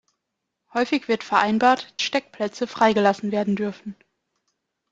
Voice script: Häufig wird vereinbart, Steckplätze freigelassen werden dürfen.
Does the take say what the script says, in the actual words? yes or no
yes